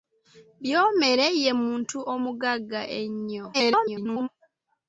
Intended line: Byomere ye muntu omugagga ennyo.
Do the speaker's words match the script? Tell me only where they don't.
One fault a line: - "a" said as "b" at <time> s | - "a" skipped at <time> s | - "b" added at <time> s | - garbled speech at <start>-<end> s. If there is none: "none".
- garbled speech at 3.5-4.3 s